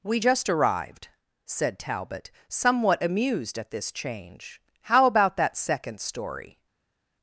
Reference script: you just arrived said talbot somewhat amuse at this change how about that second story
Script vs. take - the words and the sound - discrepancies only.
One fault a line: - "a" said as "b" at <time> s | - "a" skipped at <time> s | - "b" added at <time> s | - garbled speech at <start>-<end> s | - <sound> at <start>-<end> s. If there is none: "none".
- "you" said as "we" at 0.0 s
- "amuse" said as "amused" at 3.0 s